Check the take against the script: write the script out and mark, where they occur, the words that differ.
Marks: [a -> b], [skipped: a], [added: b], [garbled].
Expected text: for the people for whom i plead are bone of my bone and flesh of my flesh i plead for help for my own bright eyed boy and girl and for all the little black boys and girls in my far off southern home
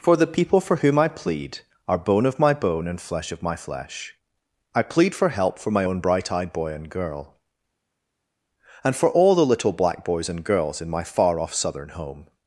for the people for whom i plead are bone of my bone and flesh of my flesh i plead for help for my own bright eyed boy and girl and for all the little black boys and girls in my far off southern home